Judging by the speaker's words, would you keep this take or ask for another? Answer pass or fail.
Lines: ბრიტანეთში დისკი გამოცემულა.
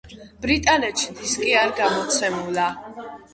fail